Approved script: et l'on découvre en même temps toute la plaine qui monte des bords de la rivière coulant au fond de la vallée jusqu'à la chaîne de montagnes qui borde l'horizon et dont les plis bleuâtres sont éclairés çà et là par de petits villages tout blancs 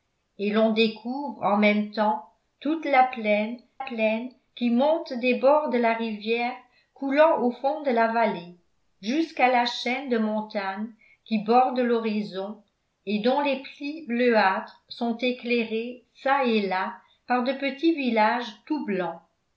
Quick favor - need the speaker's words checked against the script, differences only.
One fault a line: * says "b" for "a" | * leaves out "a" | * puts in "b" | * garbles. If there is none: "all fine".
* puts in "plaine"